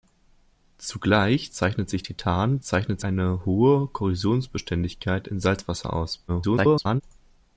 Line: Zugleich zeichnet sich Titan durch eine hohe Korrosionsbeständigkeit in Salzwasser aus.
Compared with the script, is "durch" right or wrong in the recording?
wrong